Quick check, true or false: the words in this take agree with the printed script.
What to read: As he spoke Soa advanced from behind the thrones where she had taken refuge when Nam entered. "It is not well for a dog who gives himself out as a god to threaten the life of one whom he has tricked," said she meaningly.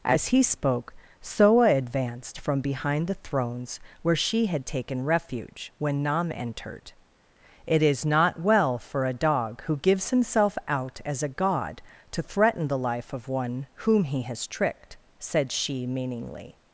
true